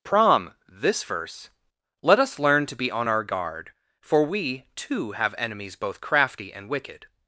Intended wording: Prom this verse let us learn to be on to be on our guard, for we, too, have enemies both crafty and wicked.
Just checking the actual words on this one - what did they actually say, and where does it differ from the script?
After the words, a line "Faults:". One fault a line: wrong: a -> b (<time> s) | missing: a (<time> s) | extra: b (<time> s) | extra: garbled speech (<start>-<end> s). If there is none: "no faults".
Prom this verse let us learn to be on our guard, for we, too, have enemies both crafty and wicked.
Faults:
missing: to be on (3.1 s)